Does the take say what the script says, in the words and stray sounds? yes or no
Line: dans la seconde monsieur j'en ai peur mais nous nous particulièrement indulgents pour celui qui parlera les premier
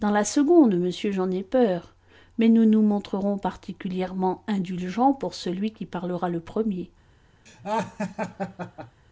no